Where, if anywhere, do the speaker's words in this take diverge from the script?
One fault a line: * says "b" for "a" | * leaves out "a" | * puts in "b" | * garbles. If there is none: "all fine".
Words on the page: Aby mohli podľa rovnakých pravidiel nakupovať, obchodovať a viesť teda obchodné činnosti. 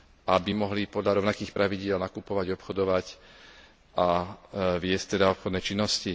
all fine